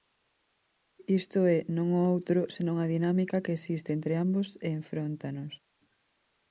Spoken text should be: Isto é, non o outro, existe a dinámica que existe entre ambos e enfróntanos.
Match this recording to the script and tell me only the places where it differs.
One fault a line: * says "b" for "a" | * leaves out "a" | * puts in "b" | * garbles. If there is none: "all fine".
* says "senón" for "existe"